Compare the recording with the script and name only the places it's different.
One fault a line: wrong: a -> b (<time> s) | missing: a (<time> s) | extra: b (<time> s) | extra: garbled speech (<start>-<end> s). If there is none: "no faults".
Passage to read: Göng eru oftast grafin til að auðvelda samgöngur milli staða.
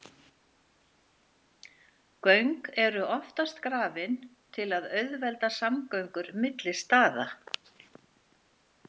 no faults